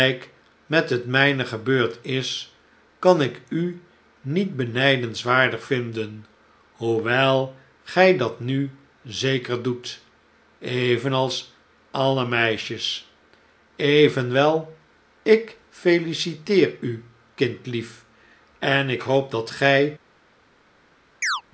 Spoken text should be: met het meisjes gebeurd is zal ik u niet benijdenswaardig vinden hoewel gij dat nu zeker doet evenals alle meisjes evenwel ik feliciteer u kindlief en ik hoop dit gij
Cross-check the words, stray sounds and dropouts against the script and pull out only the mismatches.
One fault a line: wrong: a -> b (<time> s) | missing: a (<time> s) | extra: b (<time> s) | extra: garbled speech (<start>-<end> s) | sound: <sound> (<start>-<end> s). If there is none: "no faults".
wrong: meisjes -> mijne (1.1 s)
wrong: zal -> kan (3.0 s)
wrong: dit -> dat (19.3 s)
sound: chirp (21.2-21.4 s)